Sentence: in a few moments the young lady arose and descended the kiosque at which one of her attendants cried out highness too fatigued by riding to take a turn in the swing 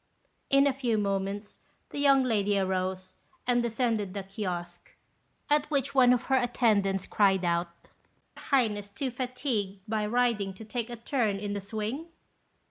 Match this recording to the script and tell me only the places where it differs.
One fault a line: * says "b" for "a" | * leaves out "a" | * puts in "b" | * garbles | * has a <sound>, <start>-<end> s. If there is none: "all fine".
all fine